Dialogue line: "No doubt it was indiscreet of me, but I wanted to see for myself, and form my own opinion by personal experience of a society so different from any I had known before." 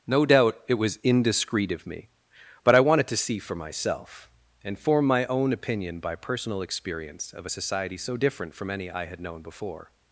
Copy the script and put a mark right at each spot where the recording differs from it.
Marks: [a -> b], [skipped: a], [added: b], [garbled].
"No doubt it was indiscreet of me, but I wanted to see for myself, and form my own opinion by personal experience of a society so different from any I had known before."